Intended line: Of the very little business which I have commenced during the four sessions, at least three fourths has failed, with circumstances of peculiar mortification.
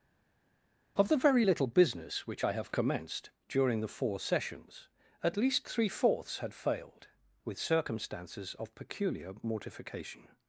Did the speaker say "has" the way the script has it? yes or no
no